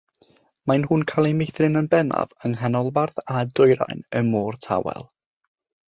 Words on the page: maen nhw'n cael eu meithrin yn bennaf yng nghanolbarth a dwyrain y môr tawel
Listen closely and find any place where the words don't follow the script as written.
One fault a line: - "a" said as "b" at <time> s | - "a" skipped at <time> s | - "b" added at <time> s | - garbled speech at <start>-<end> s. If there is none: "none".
none